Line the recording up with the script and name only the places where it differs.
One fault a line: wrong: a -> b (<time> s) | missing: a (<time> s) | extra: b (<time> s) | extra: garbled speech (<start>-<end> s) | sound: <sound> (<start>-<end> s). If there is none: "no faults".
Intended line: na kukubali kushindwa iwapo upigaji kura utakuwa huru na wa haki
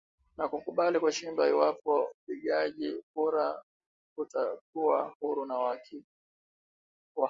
no faults